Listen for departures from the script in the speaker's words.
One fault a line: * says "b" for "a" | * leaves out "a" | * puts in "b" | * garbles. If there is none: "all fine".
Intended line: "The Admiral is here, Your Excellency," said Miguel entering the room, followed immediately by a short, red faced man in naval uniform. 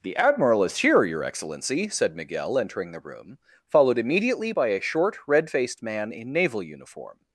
all fine